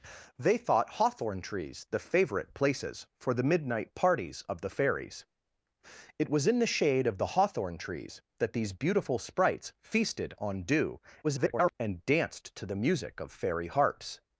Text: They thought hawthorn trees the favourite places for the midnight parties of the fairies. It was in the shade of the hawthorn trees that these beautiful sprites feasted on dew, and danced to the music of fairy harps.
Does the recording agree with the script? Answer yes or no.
no